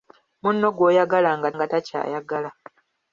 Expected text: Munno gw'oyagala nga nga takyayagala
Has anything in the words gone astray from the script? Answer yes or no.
no